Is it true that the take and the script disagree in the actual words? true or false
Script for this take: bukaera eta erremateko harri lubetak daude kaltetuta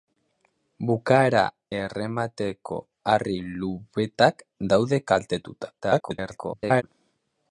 true